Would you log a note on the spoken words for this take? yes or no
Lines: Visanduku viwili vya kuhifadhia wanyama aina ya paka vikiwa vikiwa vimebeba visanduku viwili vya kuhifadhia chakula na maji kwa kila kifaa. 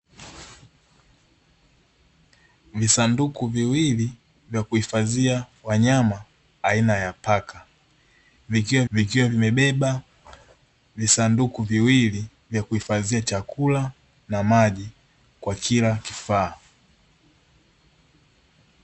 no